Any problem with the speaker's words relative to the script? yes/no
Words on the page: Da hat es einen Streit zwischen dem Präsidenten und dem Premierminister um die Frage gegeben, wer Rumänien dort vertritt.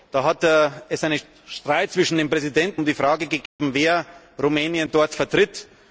yes